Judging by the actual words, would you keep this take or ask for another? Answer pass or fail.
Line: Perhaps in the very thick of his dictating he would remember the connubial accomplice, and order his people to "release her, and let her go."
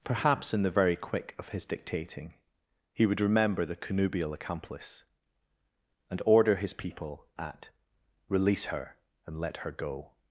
fail